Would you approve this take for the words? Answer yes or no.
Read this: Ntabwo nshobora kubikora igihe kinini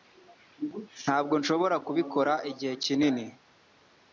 yes